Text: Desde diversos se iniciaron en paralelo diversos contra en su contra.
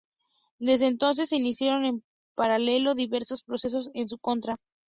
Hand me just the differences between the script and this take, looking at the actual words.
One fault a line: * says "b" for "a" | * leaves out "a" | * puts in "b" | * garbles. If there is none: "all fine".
* says "entonces" for "diversos"
* says "procesos" for "contra"